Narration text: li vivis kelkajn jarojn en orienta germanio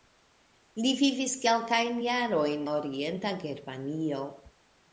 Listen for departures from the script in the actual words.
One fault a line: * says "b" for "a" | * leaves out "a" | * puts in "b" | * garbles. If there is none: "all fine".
* leaves out "en"